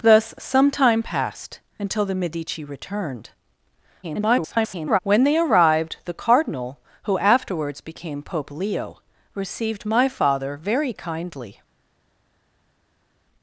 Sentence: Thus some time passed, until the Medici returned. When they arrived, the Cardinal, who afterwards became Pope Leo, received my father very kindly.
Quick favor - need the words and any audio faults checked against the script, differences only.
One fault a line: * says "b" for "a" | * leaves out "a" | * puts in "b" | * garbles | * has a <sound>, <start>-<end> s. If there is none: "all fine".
* garbles